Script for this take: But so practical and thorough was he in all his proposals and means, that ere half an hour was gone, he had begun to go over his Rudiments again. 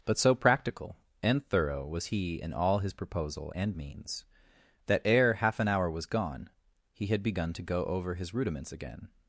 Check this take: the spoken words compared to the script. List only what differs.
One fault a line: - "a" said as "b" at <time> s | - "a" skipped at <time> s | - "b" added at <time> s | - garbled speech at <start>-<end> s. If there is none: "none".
- "proposals" said as "proposal" at 2.9 s